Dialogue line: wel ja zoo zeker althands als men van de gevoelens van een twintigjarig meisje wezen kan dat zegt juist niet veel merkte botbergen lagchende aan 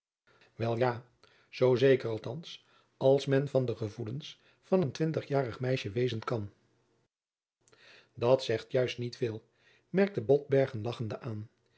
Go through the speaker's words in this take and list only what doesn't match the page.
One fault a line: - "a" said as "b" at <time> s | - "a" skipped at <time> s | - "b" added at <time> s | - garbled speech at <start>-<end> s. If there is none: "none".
none